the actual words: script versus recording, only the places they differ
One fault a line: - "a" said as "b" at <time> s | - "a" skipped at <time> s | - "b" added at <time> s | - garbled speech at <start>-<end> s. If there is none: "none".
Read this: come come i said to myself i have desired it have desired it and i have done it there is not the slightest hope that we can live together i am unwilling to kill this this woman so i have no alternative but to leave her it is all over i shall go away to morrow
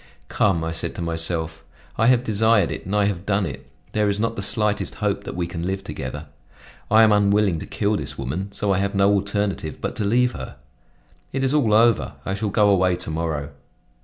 - "come" skipped at 0.6 s
- "have desired it" skipped at 2.9 s
- "this" skipped at 8.2 s